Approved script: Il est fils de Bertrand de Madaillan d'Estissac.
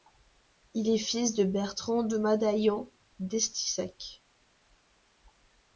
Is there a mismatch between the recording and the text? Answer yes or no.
no